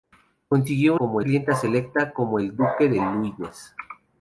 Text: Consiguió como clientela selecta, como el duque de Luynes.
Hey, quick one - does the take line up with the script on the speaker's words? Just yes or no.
yes